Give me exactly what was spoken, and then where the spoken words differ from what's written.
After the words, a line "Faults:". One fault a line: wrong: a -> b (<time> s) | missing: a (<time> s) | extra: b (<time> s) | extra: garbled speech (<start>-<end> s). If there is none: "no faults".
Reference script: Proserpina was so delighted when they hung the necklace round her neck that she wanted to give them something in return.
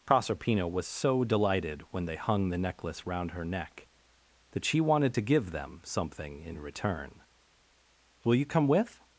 Proserpina was so delighted when they hung the necklace round her neck that she wanted to give them something in return. "Will you come with
Faults:
extra: Will you come with (8.2 s)